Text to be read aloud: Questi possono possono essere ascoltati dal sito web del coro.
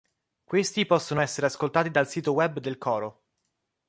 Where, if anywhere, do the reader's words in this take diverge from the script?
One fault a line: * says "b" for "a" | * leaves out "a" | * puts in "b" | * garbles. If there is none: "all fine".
* leaves out "possono"